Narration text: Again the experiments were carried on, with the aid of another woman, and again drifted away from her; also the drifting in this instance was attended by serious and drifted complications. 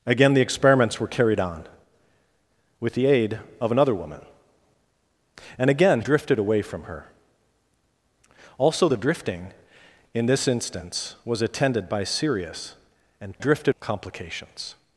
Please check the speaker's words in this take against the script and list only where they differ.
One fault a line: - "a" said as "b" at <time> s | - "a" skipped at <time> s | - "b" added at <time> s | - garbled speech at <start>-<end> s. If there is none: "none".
none